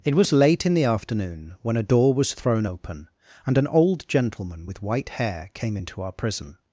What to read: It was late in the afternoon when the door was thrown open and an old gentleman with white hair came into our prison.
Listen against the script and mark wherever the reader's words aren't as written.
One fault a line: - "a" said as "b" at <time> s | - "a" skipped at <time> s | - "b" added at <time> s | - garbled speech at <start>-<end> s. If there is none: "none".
- "the" said as "a" at 1.8 s